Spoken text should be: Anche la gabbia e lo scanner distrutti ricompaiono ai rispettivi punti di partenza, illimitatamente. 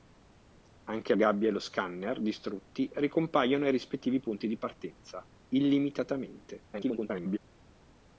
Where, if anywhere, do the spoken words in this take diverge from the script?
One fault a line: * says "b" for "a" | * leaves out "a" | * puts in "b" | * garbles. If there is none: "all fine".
* leaves out "la"
* garbles